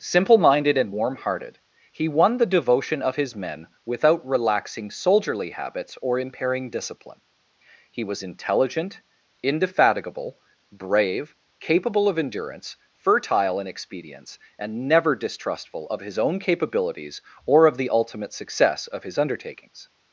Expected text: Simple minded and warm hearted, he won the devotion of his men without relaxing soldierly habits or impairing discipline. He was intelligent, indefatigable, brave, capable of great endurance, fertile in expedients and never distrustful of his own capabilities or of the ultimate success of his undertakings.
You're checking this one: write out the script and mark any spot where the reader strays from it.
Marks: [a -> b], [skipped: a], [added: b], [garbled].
Simple minded and warm hearted, he won the devotion of his men without relaxing soldierly habits or impairing discipline. He was intelligent, indefatigable, brave, capable of [skipped: great] endurance, fertile in expedients and never distrustful of his own capabilities or of the ultimate success of his undertakings.